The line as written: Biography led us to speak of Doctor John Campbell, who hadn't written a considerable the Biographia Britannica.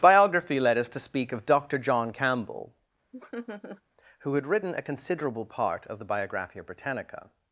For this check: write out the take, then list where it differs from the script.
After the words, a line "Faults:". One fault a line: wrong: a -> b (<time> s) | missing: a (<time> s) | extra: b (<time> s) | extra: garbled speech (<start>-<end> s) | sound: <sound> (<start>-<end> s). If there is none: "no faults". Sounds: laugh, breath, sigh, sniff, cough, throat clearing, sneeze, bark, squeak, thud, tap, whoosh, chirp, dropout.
Biography led us to speak of Doctor John Campbell, who had written a considerable part of the Biographia Britannica.
Faults:
sound: laugh (3.1-3.8 s)
wrong: hadn't -> had (4.3 s)
extra: part of (5.5 s)